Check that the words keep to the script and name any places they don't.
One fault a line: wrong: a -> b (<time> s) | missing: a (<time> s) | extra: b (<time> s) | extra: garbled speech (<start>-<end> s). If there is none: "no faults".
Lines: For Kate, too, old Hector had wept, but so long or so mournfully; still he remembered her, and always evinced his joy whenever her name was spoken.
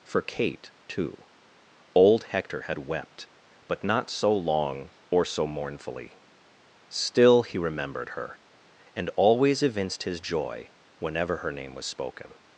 extra: not (3.8 s)